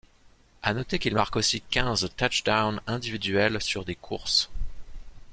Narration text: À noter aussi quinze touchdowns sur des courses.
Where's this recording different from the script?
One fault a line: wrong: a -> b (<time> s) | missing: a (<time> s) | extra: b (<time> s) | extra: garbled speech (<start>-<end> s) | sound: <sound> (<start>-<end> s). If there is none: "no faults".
extra: qu'il marque (1.0 s)
extra: individuels (2.9 s)